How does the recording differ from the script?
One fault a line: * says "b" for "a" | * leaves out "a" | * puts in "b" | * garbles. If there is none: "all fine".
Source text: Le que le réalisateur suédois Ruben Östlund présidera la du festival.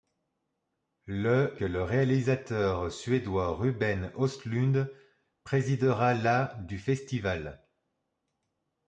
all fine